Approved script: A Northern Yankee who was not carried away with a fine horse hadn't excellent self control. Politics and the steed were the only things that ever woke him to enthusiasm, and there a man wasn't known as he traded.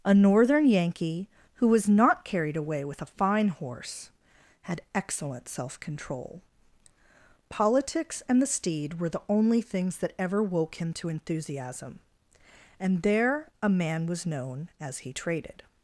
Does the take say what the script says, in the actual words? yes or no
no